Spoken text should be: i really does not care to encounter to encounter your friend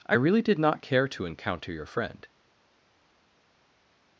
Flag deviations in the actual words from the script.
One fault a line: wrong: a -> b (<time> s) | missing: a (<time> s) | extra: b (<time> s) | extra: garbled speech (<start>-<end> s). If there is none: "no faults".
wrong: does -> did (0.4 s)
missing: to encounter (1.7 s)